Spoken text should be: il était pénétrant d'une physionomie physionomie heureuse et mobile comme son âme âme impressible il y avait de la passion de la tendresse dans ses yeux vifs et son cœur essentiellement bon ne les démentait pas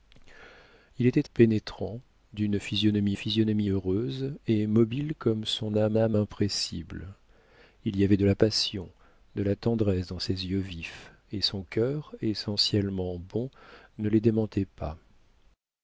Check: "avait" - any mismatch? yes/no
no